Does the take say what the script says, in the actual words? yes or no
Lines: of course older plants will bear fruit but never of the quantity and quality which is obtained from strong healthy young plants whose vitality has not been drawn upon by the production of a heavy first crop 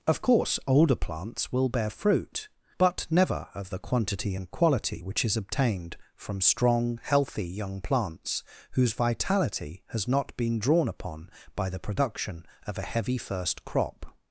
yes